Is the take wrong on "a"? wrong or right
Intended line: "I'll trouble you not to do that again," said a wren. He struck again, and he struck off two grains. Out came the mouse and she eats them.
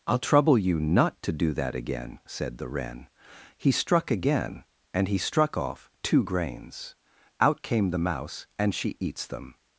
wrong